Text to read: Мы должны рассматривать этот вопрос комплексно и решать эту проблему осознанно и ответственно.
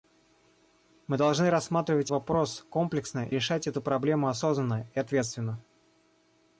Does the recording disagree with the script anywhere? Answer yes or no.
yes